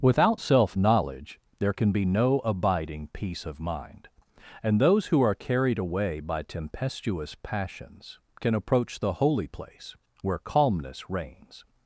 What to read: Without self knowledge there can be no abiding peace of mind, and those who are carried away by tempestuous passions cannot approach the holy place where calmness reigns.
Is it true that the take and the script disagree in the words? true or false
true